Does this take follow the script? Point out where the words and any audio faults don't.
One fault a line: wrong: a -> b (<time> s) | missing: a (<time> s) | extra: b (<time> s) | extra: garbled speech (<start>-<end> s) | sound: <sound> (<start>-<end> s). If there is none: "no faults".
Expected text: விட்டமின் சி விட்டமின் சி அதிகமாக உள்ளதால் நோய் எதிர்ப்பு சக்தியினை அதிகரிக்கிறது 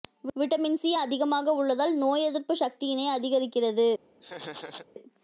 missing: விட்டமின் சி (0.9 s)
sound: laugh (4.2-4.9 s)